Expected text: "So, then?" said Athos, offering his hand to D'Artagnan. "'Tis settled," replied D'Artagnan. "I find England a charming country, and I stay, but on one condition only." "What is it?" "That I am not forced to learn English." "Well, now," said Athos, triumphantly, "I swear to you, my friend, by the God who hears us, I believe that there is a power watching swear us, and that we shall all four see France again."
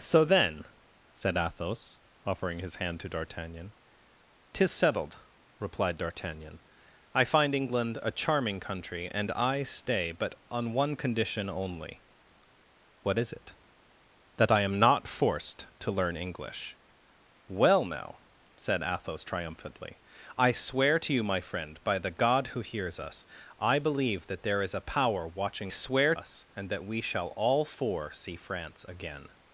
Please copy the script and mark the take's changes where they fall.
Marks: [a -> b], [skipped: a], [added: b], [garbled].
"So, then?" said Athos, offering his hand to D'Artagnan. "'Tis settled," replied D'Artagnan. "I find England a charming country, and I stay, but on one condition only." "What is it?" "That I am not forced to learn English." "Well, now," said Athos, triumphantly, "I swear to you, my friend, by the God who hears us, I believe that there is a power watching swear us, and that we shall all four see France again."